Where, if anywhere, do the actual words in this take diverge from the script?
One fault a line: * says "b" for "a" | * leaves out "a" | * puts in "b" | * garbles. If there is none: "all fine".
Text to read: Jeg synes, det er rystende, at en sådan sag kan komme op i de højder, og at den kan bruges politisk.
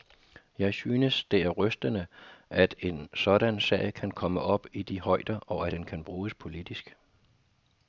* leaves out "at"